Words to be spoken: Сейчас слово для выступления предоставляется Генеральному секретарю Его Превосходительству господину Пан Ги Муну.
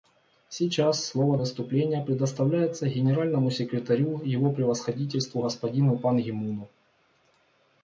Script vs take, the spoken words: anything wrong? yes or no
yes